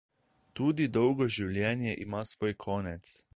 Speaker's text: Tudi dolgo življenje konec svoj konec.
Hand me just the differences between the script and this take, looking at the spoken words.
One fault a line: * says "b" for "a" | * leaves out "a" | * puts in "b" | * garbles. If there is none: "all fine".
* says "ima" for "konec"